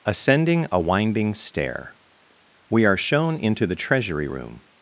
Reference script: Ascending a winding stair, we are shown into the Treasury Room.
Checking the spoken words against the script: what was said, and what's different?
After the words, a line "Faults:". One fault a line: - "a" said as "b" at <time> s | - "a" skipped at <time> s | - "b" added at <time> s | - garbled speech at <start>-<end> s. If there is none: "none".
Ascending a winding stair, we are shown into the Treasury Room.
Faults:
none